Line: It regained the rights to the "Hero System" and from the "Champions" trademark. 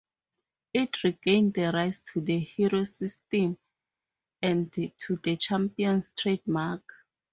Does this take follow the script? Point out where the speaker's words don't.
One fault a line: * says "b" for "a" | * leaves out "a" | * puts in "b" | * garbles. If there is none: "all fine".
* says "to" for "from"